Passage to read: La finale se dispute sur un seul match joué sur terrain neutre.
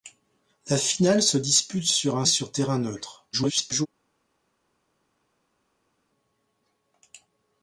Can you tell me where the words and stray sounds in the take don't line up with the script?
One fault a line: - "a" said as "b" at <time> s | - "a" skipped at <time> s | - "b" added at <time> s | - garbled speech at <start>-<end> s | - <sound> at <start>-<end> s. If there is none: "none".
- "seul match joué" skipped at 2.2 s
- garbled speech at 3.3-3.9 s